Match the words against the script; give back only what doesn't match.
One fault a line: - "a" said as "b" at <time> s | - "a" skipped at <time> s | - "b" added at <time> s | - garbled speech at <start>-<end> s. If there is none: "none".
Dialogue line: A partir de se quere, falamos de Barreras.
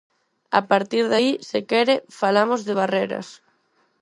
- "aí" added at 1.2 s